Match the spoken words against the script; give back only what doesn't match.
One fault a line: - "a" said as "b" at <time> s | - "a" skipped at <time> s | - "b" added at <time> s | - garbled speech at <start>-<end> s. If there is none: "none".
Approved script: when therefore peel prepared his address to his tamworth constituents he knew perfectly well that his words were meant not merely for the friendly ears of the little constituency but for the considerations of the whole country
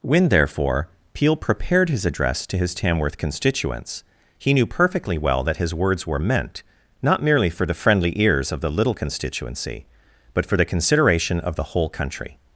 - "considerations" said as "consideration" at 10.7 s